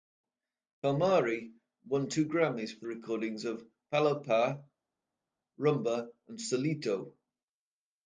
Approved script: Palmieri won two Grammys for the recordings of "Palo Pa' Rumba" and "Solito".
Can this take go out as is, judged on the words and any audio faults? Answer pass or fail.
fail